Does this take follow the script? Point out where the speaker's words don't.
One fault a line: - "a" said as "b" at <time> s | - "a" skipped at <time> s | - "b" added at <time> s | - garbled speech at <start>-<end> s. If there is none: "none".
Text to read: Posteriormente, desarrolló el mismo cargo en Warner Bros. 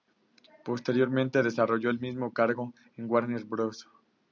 none